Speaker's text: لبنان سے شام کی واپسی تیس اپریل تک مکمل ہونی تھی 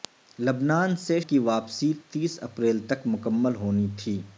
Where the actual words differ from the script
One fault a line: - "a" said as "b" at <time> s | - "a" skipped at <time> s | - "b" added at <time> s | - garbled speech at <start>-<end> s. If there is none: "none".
- "شام" skipped at 1.2 s